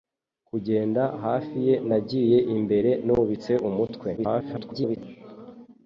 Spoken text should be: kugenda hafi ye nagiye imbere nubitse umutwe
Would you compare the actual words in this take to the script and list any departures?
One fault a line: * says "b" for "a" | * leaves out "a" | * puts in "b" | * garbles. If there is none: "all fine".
* garbles